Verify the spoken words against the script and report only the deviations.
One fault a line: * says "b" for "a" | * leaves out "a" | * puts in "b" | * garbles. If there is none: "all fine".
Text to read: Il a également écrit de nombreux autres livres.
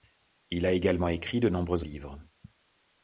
* leaves out "autres"